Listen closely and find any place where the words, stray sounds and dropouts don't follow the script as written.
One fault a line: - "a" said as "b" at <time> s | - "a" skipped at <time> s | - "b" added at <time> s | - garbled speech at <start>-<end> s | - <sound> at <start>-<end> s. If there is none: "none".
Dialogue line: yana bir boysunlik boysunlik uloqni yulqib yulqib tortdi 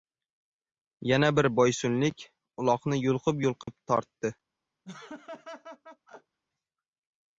- "boysunlik" skipped at 2.2 s
- dropout at 3.6-3.7 s
- laugh at 4.8-6.4 s